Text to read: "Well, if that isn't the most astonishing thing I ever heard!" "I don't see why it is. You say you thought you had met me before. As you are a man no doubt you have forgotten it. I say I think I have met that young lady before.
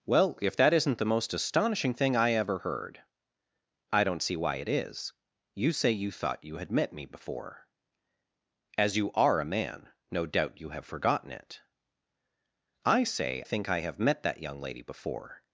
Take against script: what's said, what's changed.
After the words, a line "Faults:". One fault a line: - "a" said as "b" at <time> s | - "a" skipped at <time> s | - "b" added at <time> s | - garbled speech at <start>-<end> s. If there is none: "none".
"Well, if that isn't the most astonishing thing I ever heard!" "I don't see why it is. You say you thought you had met me before. As you are a man no doubt you have forgotten it. I say think I have met that young lady before.
Faults:
- "I" skipped at 13.4 s